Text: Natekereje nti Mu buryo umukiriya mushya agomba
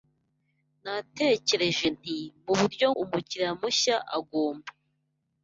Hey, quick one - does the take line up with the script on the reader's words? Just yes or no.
yes